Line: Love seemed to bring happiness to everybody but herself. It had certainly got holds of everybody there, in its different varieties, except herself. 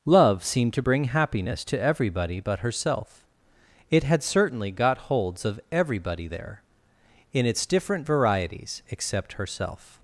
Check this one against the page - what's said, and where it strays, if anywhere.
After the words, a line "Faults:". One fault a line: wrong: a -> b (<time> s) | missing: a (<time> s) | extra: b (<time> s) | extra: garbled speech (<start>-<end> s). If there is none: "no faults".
Love seemed to bring happiness to everybody but herself. It had certainly got holds of everybody there, in its different varieties, except herself.
Faults:
no faults